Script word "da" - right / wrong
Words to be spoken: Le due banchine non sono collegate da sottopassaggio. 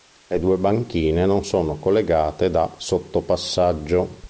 right